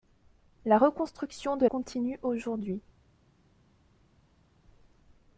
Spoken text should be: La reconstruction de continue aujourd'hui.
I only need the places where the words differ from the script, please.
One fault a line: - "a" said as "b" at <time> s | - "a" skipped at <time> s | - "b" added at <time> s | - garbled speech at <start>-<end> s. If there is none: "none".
none